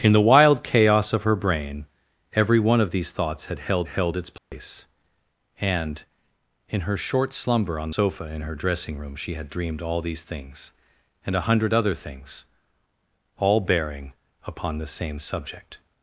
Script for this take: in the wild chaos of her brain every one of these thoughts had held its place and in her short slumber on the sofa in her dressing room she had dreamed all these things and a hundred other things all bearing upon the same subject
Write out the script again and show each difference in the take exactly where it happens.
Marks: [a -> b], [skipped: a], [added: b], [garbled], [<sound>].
in the wild chaos of her brain every one of these thoughts had held [added: held] its place [dropout] and in her short slumber on [skipped: the] sofa in her dressing room she had dreamed all these things and a hundred other things all bearing upon the same subject